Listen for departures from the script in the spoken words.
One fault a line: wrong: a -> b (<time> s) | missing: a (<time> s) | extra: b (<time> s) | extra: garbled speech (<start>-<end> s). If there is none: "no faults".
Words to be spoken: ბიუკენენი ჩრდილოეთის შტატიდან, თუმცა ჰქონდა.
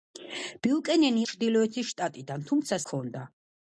no faults